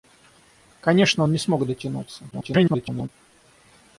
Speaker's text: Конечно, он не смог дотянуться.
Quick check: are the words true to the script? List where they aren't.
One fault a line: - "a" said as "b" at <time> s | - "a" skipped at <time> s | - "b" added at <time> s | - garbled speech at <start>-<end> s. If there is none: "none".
- garbled speech at 2.3-3.1 s